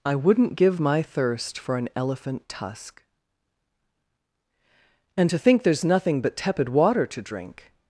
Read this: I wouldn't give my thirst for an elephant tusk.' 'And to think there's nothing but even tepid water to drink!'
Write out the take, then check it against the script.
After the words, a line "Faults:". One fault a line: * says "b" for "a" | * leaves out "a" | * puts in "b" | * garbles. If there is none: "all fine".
I wouldn't give my thirst for an elephant tusk.' 'And to think there's nothing but tepid water to drink!'
Faults:
* leaves out "even"